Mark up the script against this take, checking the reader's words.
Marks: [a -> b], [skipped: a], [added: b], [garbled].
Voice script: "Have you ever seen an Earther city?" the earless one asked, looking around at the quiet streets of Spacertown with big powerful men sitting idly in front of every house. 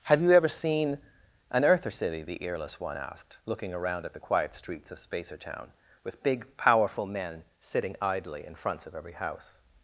"Have you ever seen an Earther city?" the earless one asked, looking around at the quiet streets of Spacertown with big powerful men sitting idly in [front -> fronts] of every house.